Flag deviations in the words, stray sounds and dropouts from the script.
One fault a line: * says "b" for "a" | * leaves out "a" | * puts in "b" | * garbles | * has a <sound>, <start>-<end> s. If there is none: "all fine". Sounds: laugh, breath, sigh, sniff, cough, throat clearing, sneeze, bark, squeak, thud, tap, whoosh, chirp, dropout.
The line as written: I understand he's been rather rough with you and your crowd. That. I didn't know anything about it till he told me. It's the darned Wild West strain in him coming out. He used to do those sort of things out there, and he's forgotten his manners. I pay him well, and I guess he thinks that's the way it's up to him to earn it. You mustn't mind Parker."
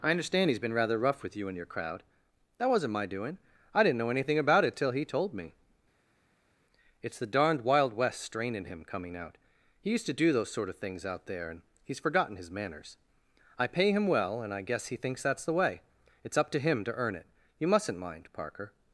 * puts in "wasn't my doing"